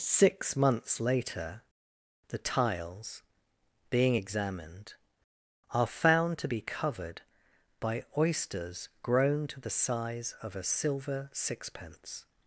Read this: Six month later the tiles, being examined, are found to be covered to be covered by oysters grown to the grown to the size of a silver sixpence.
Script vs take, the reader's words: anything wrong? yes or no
yes